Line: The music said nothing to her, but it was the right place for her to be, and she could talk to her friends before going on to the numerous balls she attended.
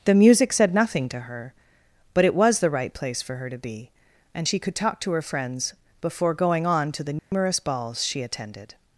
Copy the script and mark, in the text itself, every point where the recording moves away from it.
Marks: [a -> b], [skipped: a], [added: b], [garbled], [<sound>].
The music said nothing to her, but it was the right place for her to be, and she could talk to her friends before going on to the numerous [dropout] balls she attended.